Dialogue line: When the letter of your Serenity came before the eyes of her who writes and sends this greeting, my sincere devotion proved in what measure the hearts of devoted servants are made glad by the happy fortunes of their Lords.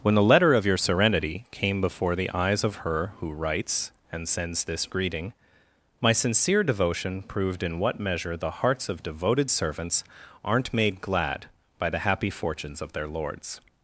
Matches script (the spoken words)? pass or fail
fail